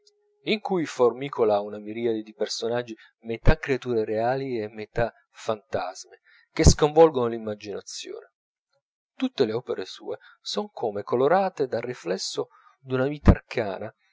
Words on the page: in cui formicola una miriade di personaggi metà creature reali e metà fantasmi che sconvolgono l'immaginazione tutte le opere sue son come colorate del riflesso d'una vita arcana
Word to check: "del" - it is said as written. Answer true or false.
false